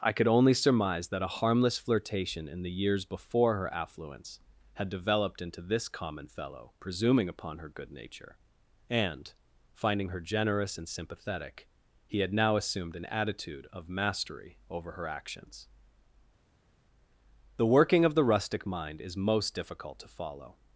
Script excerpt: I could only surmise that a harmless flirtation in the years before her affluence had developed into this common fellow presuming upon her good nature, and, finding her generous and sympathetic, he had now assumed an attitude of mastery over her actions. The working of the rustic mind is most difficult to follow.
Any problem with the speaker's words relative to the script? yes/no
no